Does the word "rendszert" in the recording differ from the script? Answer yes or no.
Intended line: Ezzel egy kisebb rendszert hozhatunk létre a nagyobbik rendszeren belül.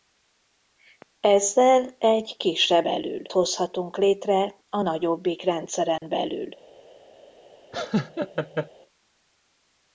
yes